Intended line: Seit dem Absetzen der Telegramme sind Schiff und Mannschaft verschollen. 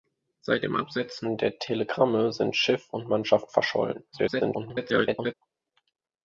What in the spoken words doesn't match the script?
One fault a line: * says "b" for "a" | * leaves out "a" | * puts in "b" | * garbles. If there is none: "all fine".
* garbles